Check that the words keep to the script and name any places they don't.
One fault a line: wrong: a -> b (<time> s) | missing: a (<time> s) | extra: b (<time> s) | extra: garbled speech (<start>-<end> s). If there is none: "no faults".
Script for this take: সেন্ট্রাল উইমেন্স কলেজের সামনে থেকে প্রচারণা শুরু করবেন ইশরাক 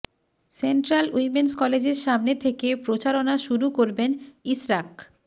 no faults